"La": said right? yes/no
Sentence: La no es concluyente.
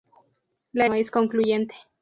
yes